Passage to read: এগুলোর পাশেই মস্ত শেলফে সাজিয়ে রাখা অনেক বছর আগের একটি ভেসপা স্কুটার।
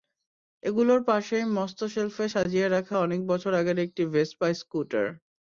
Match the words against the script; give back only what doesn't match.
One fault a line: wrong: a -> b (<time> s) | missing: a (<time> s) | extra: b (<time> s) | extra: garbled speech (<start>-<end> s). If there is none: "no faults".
no faults